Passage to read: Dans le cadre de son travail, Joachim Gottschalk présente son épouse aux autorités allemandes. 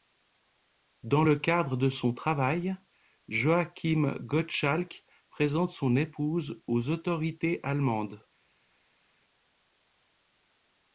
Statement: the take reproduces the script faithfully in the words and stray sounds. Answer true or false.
true